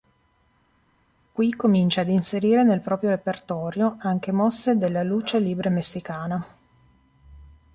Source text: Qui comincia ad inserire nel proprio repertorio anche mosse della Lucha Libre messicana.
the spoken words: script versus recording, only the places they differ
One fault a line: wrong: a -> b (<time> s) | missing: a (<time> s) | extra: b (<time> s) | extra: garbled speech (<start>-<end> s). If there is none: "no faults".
no faults